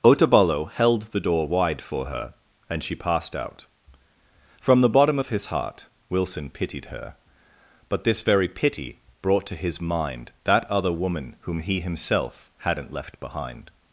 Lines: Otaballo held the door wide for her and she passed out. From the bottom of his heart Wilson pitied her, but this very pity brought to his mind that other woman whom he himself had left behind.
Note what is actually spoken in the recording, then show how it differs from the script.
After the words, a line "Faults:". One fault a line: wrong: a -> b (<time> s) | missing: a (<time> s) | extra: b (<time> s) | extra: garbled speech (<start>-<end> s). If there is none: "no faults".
Otaballo held the door wide for her and she passed out. From the bottom of his heart Wilson pitied her, but this very pity brought to his mind that other woman whom he himself hadn't left behind.
Faults:
wrong: had -> hadn't (12.6 s)